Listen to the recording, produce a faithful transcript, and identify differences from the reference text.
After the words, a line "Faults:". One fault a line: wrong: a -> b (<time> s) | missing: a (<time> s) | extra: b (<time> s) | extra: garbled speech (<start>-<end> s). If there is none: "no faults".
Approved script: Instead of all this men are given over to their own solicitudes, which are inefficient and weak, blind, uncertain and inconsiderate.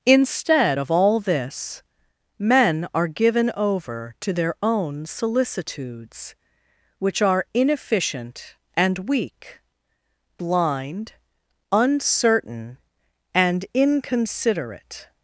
Instead of all this men are given over to their own solicitudes, which are inefficient and weak, blind, uncertain and inconsiderate.
Faults:
no faults